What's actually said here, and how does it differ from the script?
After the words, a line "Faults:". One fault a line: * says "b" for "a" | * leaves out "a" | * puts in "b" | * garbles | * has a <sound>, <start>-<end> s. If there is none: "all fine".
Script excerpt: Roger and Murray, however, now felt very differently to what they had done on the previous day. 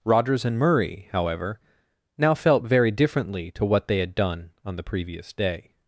Rogers and Murray, however, now felt very differently to what they had done on the previous day.
Faults:
* says "Rogers" for "Roger"